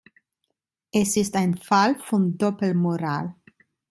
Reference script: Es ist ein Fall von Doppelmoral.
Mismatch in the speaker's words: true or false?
false